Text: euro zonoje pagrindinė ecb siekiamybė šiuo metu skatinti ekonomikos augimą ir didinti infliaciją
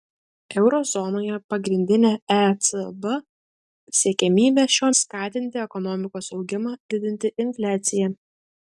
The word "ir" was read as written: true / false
false